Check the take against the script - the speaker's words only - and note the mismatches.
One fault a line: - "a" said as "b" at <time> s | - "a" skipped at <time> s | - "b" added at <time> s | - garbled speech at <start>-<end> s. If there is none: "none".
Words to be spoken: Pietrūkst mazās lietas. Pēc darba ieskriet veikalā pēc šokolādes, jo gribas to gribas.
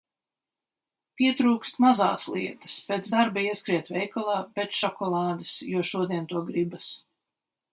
- "gribas" said as "šodien" at 5.9 s